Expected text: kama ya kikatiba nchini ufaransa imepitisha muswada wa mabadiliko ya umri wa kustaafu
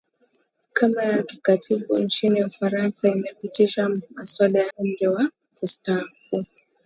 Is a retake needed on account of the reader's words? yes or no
yes